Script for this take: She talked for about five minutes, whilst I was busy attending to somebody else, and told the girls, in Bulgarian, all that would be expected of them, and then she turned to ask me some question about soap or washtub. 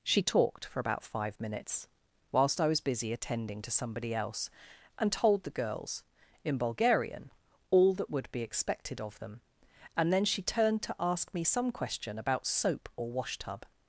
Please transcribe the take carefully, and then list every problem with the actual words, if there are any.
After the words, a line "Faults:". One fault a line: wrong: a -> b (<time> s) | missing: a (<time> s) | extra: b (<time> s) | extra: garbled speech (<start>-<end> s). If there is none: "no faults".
She talked for about five minutes, whilst I was busy attending to somebody else, and told the girls, in Bulgarian, all that would be expected of them, and then she turned to ask me some question about soap or washtub.
Faults:
no faults